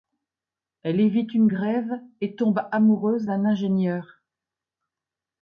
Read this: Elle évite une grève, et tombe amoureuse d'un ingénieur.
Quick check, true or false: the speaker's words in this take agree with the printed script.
true